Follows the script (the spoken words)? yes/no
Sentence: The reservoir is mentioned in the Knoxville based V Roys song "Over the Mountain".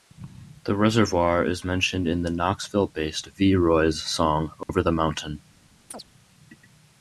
yes